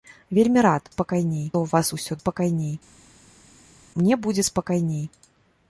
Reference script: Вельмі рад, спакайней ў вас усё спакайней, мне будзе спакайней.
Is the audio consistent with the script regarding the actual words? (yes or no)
yes